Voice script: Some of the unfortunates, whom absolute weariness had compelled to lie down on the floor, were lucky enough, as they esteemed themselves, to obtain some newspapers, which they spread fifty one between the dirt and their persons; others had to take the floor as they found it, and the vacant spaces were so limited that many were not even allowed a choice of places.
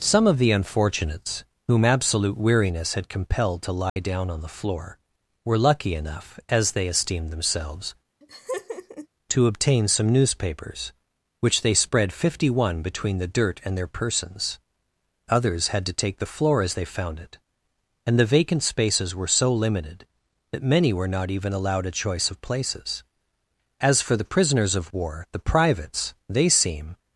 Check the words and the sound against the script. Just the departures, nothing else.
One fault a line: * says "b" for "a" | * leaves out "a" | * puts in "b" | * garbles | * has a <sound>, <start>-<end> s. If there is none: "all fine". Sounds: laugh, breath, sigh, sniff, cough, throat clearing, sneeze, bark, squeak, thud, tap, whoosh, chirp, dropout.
* has a dropout, 3.9-4.0 s
* has a laugh, 8.2-9.1 s
* puts in "As for the prisoners of war the privates they seem"